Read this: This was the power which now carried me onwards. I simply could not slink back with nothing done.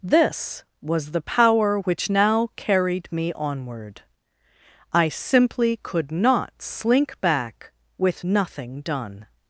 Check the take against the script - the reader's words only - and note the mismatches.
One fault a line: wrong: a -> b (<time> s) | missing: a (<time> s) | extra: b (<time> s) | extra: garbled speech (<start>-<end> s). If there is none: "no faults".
wrong: onwards -> onward (3.3 s)